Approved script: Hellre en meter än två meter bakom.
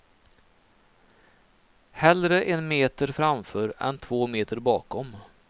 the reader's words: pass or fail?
fail